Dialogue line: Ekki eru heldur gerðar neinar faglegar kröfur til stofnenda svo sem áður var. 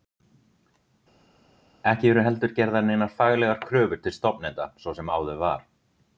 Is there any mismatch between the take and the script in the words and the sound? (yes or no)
no